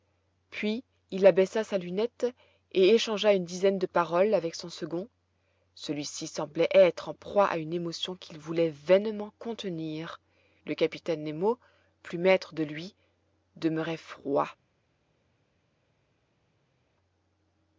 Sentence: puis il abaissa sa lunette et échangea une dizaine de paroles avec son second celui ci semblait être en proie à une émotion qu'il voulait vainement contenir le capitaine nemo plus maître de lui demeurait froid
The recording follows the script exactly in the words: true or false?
true